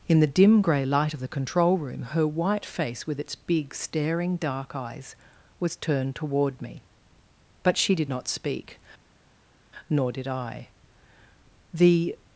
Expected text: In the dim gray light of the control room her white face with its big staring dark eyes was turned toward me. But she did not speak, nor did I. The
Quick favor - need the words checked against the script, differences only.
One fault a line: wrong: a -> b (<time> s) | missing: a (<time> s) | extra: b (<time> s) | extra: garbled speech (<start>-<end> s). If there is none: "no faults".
no faults